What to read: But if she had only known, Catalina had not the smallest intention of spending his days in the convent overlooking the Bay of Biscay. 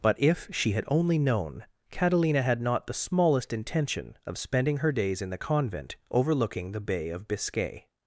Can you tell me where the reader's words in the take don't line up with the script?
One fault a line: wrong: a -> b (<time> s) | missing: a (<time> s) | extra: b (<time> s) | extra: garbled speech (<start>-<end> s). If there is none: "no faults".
wrong: his -> her (4.8 s)